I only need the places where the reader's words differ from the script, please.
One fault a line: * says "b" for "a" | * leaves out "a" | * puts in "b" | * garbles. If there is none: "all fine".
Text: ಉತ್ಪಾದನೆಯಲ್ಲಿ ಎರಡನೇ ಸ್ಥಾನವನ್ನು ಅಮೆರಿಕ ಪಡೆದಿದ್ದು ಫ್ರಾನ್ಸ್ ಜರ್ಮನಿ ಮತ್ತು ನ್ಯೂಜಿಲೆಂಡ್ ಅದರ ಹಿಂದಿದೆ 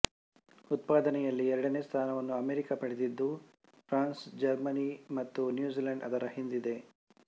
all fine